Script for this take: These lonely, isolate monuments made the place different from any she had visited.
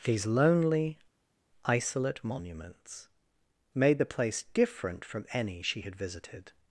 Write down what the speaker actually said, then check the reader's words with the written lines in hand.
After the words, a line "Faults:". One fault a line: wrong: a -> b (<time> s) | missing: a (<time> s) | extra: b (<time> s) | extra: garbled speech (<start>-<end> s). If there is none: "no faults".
These lonely, isolate monuments made the place different from any she had visited.
Faults:
no faults